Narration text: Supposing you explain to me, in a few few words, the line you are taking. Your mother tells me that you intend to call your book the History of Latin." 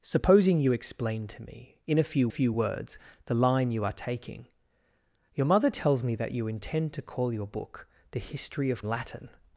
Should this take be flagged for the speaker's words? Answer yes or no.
no